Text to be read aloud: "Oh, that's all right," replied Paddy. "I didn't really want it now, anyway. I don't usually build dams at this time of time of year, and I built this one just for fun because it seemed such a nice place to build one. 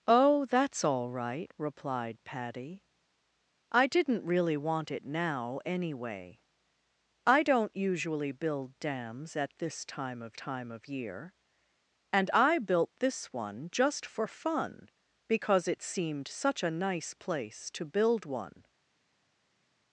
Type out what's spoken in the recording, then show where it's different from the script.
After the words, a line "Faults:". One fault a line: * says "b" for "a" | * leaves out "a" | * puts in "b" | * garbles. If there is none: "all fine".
"Oh, that's all right," replied Paddy. "I didn't really want it now, anyway. I don't usually build dams at this time of time of year, and I built this one just for fun because it seemed such a nice place to build one.
Faults:
all fine